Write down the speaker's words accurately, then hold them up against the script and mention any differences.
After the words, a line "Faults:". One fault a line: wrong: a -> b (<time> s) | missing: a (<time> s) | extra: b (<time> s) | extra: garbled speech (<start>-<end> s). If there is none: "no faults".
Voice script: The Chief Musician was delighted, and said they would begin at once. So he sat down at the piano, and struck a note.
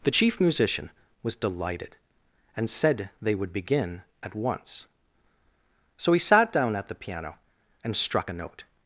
The Chief Musician was delighted, and said they would begin at once. So he sat down at the piano, and struck a note.
Faults:
no faults